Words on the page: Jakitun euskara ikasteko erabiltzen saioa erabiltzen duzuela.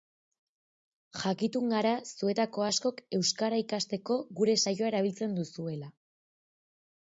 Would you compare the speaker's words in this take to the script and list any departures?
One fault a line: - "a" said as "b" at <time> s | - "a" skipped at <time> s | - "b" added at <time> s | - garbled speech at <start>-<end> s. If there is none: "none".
- "gara zuetako askok" added at 1.7 s
- "erabiltzen" said as "gure" at 4.4 s